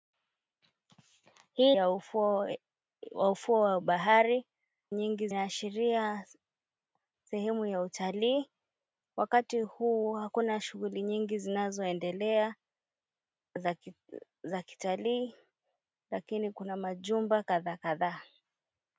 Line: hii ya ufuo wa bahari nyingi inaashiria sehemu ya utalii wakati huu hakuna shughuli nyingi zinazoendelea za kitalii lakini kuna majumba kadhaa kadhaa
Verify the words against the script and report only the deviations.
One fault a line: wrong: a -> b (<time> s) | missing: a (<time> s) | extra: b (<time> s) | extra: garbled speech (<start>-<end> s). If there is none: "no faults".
no faults